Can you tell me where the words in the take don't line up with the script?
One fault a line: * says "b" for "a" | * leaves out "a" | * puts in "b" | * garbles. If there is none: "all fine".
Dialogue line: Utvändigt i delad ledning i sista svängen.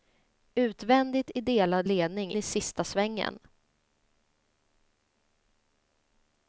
all fine